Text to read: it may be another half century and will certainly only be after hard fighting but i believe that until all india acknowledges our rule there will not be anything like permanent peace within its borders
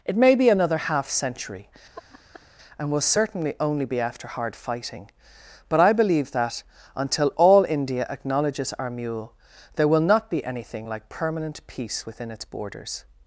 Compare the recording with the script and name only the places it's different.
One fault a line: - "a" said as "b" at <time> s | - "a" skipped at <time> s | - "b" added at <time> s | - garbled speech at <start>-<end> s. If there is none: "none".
- "rule" said as "mule" at 8.9 s